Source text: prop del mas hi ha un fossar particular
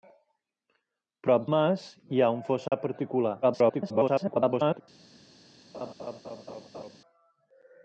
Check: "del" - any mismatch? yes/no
yes